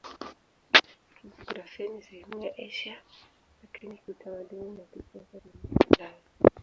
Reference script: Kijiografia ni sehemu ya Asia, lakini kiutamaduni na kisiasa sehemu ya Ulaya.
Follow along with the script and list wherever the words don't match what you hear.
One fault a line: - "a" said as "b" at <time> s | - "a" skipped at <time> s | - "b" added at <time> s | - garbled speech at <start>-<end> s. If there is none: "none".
none